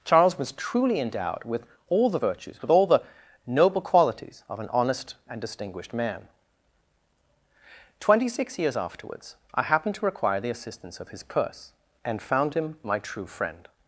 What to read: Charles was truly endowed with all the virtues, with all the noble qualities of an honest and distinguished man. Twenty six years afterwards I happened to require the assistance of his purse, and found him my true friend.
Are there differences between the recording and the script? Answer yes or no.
no